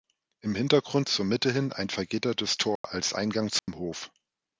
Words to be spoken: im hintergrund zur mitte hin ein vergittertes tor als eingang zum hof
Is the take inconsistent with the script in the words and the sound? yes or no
yes